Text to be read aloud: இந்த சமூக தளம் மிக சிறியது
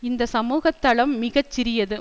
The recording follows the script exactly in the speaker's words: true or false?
true